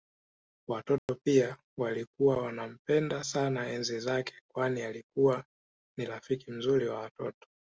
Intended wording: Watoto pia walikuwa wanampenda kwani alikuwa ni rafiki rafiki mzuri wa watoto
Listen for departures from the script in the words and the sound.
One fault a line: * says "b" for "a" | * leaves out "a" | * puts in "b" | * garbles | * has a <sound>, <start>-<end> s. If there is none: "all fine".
* has a dropout, 1.0-1.1 s
* puts in "sana enzi zake"
* leaves out "rafiki"